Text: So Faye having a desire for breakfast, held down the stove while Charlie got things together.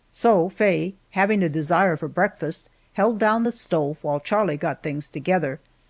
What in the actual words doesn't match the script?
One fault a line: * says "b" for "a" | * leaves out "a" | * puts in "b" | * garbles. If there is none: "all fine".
all fine